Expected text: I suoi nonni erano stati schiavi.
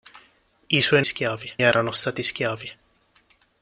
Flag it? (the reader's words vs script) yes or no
yes